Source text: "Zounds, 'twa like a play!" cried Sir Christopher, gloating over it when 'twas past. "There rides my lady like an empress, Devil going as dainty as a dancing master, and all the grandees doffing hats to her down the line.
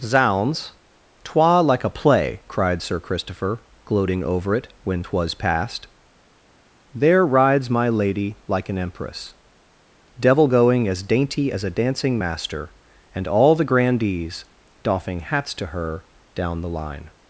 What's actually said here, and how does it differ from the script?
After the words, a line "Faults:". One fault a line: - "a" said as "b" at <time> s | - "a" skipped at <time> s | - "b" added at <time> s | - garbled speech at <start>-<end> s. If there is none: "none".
"Zounds, 'twa like a play!" cried Sir Christopher, gloating over it when 'twas past. "There rides my lady like an empress, Devil going as dainty as a dancing master, and all the grandees doffing hats to her down the line.
Faults:
none